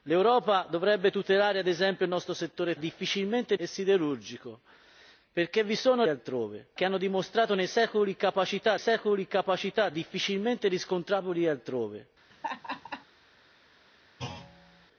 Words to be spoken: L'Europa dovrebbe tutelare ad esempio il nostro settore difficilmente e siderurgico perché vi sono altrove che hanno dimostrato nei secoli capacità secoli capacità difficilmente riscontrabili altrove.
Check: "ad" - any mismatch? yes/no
no